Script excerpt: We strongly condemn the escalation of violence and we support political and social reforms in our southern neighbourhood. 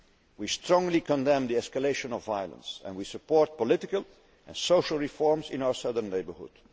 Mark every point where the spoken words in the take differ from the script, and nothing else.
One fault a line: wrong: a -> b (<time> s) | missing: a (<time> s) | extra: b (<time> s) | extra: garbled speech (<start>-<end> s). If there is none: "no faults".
no faults